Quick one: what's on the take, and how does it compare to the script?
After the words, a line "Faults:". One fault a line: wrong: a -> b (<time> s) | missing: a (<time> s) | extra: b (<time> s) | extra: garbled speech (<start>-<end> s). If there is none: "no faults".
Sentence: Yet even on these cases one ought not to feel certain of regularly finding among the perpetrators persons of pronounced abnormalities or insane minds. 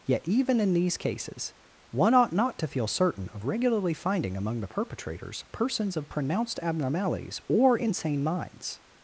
Yet even in these cases one ought not to feel certain of regularly finding among the perpetrators persons of pronounced abnormalities or insane minds.
Faults:
wrong: on -> in (0.6 s)